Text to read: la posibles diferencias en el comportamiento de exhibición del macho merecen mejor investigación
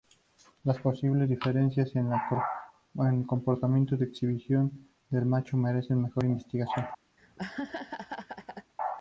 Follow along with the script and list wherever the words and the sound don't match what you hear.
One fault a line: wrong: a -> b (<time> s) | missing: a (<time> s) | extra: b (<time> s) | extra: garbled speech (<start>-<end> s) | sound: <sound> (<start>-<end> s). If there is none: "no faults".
wrong: la -> las (0.6 s)
sound: laugh (7.2-8.7 s)